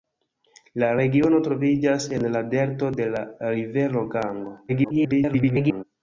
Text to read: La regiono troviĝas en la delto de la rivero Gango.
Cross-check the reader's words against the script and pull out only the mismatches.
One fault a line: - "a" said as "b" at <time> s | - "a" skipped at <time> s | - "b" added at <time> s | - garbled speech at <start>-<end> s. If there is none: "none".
- garbled speech at 4.7-5.8 s